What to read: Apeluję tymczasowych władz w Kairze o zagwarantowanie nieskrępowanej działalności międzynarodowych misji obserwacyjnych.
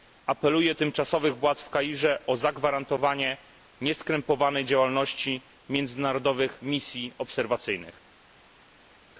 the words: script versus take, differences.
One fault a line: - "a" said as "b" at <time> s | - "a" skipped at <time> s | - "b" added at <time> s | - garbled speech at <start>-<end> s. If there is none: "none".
none